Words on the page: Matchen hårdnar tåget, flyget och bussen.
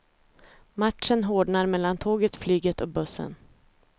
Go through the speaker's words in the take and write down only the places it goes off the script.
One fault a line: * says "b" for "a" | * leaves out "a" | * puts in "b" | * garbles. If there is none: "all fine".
* puts in "mellan"